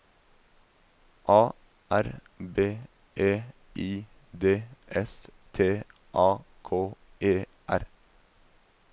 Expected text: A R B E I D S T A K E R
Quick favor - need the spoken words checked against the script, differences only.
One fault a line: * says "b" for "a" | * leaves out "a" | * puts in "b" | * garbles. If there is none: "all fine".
all fine